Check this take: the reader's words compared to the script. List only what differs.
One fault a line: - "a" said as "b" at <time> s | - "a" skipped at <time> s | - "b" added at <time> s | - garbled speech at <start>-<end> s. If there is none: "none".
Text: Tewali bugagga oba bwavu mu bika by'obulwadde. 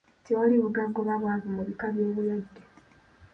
none